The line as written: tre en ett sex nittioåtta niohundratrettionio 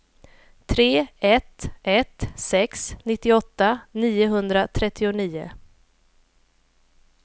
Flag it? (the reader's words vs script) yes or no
yes